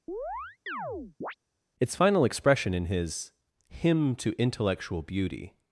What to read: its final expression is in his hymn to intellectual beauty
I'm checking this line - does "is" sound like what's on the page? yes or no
no